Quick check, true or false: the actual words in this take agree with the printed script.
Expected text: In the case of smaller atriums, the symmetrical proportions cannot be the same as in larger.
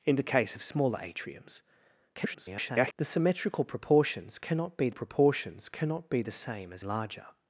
false